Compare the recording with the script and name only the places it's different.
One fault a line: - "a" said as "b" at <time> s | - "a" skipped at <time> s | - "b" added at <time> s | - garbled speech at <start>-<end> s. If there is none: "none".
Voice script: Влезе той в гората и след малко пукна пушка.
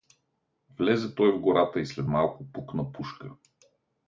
none